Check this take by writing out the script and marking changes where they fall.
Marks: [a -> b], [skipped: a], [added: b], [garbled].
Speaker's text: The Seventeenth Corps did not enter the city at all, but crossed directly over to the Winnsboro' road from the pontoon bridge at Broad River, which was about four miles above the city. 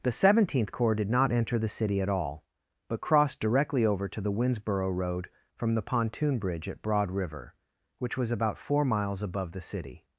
The Seventeenth Corps did not enter the city at all, but crossed directly over to the Winnsboro' road from the pontoon bridge at Broad River, which was about four miles above the city.